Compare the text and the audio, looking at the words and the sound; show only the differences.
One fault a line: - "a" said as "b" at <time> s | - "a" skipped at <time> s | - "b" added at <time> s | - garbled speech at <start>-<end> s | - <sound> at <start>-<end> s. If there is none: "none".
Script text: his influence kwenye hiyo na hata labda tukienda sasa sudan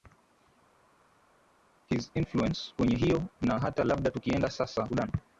none